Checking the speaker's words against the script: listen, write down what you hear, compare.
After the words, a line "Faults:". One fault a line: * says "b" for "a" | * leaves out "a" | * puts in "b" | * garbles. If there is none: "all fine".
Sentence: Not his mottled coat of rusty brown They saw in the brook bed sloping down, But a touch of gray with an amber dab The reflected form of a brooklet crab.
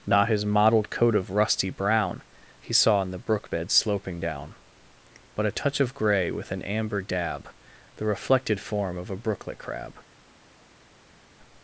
Not his mottled coat of rusty brown He saw in the brook bed sloping down, But a touch of gray with an amber dab The reflected form of a brooklet crab.
Faults:
* says "He" for "They"